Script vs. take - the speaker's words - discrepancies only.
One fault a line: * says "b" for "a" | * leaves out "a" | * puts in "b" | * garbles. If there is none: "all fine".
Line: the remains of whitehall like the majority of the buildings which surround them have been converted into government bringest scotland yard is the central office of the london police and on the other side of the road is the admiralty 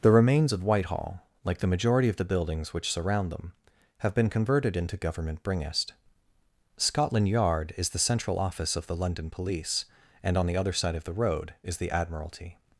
all fine